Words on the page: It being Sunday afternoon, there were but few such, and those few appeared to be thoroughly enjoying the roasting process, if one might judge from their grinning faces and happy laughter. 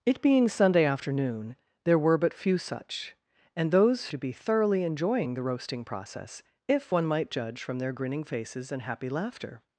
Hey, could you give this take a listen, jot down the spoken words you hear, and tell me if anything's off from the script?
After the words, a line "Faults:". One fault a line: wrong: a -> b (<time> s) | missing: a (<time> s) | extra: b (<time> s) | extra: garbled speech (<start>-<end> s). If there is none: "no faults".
It being Sunday afternoon, there were but few such, and those to be thoroughly enjoying the roasting process, if one might judge from their grinning faces and happy laughter.
Faults:
missing: few appeared (4.1 s)